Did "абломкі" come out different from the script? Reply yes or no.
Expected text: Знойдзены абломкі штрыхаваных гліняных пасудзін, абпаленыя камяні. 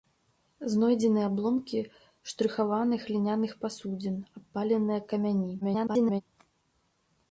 no